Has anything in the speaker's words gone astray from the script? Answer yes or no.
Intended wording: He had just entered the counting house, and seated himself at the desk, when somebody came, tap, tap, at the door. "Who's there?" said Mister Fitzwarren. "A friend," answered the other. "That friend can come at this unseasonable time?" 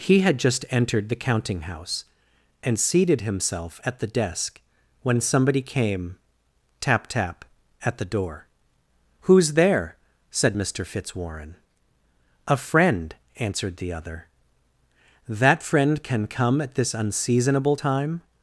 no